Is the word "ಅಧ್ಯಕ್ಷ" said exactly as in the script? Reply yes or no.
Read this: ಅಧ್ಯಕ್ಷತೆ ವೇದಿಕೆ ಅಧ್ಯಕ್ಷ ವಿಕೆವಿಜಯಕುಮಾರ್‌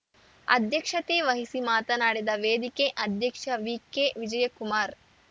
yes